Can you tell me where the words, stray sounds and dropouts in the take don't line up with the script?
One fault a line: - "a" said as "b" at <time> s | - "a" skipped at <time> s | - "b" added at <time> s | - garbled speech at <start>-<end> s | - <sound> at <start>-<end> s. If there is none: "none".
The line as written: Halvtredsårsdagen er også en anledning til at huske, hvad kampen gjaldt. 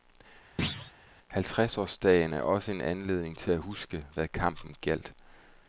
- thud at 0.6-0.9 s